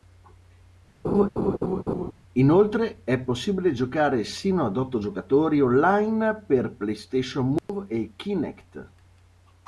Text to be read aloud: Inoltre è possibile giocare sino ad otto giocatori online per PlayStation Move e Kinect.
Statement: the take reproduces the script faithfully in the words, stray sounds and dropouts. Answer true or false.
false